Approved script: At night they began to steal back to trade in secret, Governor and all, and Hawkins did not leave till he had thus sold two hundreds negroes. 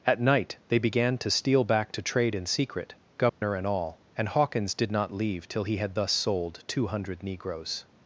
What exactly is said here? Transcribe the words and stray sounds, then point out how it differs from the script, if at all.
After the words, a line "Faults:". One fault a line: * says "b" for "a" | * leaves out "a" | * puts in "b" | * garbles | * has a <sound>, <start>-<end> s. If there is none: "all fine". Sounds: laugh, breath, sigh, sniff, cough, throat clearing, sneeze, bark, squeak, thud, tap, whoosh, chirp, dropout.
At night they began to steal back to trade in secret, Governor and all, and Hawkins did not leave till he had thus sold two hundred negroes.
Faults:
* has a dropout, 3.3-3.4 s
* says "hundred" for "hundreds"